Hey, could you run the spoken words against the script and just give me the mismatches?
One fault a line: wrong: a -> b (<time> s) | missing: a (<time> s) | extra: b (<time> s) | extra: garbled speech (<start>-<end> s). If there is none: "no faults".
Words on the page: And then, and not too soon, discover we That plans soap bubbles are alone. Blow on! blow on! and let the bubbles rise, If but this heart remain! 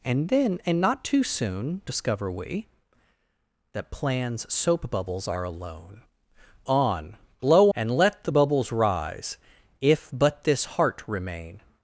missing: Blow (6.0 s)
missing: on (7.7 s)